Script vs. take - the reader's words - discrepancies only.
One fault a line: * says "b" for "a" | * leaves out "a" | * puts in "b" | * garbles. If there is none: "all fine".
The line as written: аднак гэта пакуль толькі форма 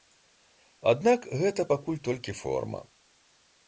all fine